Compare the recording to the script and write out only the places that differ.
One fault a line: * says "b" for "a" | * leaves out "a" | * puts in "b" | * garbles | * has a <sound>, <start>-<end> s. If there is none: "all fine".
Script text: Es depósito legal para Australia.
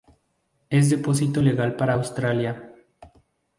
all fine